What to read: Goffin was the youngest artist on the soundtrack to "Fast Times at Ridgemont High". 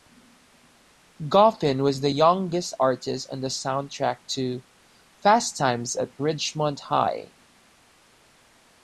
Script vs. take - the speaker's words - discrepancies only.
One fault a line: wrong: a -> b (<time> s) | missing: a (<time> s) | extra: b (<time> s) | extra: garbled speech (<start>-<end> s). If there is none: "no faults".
no faults